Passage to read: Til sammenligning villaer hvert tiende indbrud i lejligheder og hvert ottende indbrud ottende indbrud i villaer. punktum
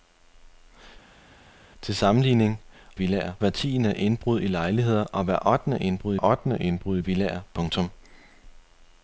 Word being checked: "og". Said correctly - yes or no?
yes